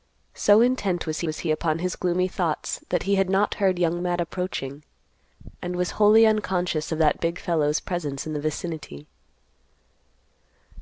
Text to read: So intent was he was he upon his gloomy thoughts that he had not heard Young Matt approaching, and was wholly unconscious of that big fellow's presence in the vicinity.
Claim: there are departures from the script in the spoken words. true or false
false